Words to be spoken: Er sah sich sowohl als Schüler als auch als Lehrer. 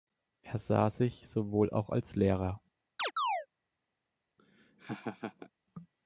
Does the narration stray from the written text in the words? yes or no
yes